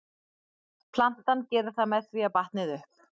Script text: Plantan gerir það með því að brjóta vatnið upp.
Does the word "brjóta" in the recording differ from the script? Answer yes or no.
yes